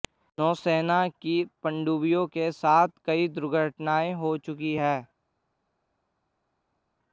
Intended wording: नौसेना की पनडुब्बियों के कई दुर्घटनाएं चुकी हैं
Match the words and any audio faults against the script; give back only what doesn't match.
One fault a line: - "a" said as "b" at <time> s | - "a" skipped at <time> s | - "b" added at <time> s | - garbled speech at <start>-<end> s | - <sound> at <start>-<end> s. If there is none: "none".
- "साथ" added at 2.5 s
- "हो" added at 4.1 s